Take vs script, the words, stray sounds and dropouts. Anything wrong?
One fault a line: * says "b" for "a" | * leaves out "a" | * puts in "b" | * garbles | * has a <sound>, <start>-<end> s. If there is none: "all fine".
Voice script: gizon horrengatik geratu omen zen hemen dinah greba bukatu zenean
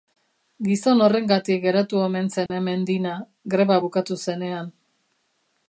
* has a dropout, 2.5-2.5 s